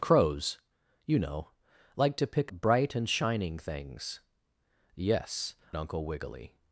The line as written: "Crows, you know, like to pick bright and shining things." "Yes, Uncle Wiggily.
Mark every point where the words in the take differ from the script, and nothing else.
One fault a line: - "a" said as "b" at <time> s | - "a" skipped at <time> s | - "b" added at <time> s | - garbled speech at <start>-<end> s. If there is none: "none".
none